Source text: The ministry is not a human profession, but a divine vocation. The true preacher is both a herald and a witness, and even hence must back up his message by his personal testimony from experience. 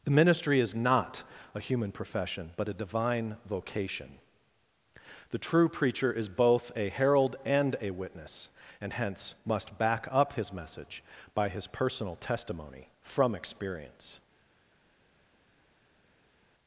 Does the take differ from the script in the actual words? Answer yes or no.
yes